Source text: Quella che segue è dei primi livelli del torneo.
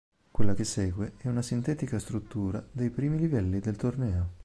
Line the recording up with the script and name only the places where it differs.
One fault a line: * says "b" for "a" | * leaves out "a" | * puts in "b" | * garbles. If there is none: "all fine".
* puts in "una sintetica struttura"